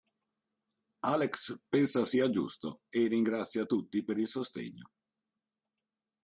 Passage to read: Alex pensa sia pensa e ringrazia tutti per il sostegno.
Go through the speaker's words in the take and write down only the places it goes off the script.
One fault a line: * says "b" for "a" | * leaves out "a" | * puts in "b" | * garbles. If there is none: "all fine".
* says "giusto" for "pensa"